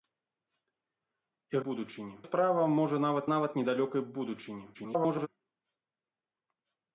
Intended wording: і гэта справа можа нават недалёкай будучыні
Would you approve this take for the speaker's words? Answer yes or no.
no